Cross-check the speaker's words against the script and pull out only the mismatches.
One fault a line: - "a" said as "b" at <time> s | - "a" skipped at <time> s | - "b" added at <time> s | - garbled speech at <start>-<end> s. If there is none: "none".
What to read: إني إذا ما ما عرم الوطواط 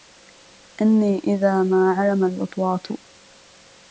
- "ما" skipped at 2.0 s